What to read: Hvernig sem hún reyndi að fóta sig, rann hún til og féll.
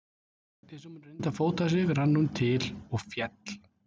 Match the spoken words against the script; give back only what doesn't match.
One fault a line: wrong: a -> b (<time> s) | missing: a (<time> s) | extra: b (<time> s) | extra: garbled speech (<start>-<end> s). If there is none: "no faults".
no faults